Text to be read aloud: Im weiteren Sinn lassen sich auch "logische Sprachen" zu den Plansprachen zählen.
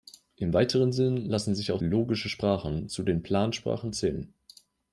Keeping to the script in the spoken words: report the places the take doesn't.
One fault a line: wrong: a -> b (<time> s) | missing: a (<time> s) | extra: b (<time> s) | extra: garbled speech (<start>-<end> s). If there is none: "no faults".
no faults